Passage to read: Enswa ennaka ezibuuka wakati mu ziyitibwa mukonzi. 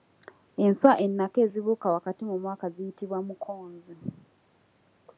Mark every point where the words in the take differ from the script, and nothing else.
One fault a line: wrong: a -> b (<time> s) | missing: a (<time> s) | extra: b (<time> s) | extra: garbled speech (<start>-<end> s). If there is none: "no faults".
extra: mwaka (2.4 s)